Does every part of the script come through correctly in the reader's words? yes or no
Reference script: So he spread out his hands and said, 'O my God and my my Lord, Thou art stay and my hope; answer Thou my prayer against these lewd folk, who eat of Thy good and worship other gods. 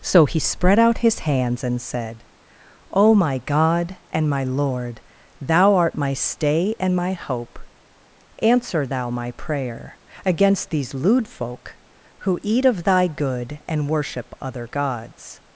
no